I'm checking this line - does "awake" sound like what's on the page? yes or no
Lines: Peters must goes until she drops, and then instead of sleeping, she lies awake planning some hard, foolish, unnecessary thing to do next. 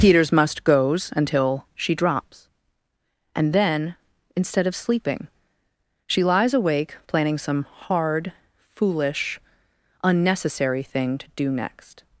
yes